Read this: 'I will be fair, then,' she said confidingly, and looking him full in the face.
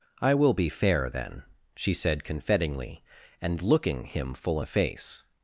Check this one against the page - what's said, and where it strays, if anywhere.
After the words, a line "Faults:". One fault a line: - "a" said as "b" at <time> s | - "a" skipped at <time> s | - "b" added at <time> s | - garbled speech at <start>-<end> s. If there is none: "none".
'I will be fair, then,' she said confidingly, and looking him full the face.
Faults:
- "in" skipped at 4.6 s